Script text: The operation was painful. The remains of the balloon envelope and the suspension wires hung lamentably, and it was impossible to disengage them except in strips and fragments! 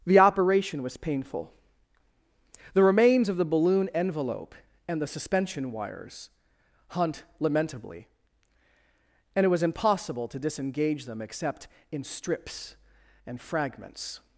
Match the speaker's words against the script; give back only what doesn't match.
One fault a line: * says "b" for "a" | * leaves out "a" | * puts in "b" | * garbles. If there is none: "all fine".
* says "hunt" for "hung"